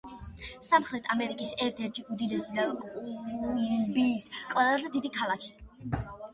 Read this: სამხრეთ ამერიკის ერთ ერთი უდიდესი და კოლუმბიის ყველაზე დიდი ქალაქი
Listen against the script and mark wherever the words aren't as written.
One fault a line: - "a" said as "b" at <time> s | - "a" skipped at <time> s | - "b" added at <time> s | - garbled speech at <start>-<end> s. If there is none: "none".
none